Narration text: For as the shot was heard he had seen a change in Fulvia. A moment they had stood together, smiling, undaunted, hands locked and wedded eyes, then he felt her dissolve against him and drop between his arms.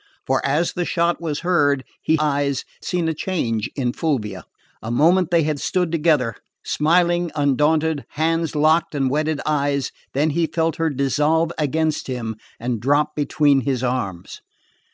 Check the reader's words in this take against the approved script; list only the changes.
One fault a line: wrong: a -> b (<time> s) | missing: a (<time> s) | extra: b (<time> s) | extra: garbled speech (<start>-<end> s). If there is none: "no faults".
wrong: had -> eyes (2.2 s)